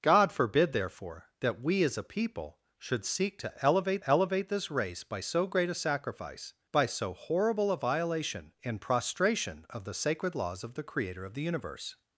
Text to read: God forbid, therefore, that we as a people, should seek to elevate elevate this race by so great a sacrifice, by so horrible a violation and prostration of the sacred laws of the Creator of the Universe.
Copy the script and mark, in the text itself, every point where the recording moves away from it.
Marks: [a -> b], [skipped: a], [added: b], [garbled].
God forbid, therefore, that we as a people, should seek to elevate elevate this race by so great a sacrifice, by so horrible a violation and prostration of the sacred laws of the Creator of the Universe.